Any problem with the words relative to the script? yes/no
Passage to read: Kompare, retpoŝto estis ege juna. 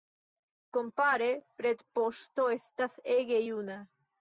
yes